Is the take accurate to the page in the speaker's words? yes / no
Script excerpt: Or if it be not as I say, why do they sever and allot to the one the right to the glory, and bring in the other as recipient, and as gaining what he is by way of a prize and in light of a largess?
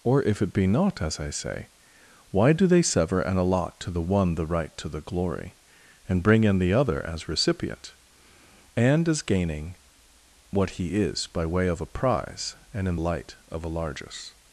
yes